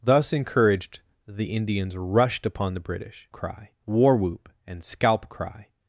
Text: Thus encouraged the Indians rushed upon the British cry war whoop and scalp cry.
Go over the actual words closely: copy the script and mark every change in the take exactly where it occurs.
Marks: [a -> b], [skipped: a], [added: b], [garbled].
Thus encouraged the Indians rushed upon the British cry war whoop and scalp cry.